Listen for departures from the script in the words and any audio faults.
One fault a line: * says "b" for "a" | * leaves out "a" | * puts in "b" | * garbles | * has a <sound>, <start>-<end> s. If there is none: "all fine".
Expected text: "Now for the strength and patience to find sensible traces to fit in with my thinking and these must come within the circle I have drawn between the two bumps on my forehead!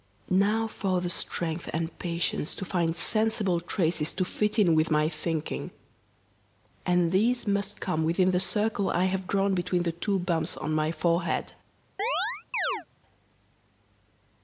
* has a chirp, 12.0-12.9 s